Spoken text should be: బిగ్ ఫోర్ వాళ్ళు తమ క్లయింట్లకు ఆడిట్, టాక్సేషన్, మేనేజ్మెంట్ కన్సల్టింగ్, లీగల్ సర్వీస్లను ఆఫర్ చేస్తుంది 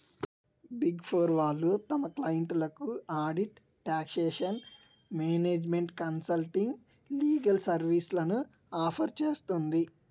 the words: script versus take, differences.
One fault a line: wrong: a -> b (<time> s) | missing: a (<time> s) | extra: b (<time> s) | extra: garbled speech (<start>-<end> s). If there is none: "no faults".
no faults